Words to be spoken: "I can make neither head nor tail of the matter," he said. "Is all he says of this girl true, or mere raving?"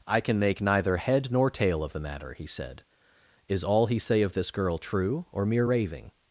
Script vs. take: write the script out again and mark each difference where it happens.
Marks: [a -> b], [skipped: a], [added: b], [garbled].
"I can make neither head nor tail of the matter," he said. "Is all he [says -> say] of this girl true, or mere raving?"